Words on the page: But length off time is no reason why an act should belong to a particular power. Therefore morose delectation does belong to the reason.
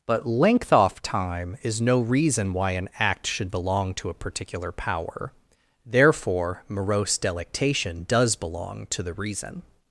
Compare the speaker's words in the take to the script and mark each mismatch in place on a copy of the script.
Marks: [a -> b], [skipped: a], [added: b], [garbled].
But length off time is no reason why an act should belong to a particular power. Therefore morose delectation does belong to the reason.